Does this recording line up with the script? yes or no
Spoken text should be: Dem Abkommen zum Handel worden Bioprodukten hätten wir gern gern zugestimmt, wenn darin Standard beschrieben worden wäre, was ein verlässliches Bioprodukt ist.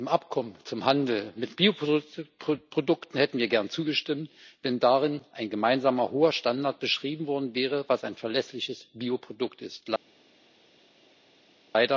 no